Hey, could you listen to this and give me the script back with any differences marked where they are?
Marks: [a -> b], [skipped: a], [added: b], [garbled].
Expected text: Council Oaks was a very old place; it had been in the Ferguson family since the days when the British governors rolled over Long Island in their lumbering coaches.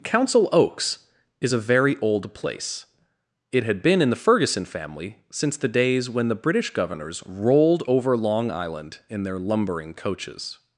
Council Oaks [was -> is] a very old place; it had been in the Ferguson family since the days when the British governors rolled over Long Island in their lumbering coaches.